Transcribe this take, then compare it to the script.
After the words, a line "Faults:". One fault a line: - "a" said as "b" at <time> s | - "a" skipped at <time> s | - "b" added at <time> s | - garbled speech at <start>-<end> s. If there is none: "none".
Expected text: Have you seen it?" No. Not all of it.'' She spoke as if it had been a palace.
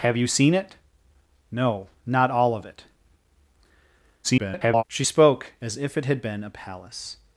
Have you seen it?" No. Not all of it.'' [garbled] She spoke as if it had been a palace.
Faults:
- garbled speech at 4.2-4.8 s